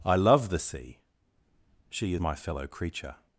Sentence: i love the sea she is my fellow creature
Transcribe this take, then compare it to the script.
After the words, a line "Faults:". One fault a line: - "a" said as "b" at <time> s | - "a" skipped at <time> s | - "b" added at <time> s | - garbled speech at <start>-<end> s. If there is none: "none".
i love the sea she my fellow creature
Faults:
- "is" skipped at 2.1 s